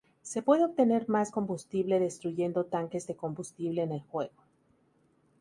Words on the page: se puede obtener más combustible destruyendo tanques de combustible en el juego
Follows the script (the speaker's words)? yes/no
yes